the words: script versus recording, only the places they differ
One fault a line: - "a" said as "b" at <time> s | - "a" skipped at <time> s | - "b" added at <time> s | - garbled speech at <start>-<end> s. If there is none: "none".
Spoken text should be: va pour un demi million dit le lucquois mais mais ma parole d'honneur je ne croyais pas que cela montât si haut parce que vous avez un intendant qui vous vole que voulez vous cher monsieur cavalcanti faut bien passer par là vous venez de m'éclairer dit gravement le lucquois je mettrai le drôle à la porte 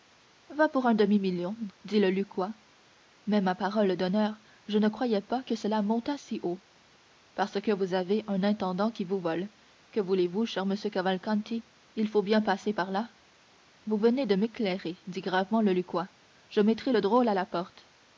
- "mais" skipped at 3.4 s
- "il" added at 12.0 s